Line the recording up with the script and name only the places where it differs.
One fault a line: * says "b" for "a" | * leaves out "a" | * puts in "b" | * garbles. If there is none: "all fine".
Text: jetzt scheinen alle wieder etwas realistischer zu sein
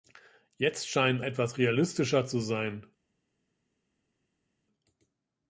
* leaves out "alle wieder"